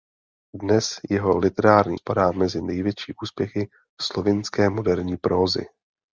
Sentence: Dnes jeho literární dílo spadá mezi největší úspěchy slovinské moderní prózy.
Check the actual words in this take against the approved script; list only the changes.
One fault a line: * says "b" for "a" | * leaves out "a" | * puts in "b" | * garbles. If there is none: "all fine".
* leaves out "dílo"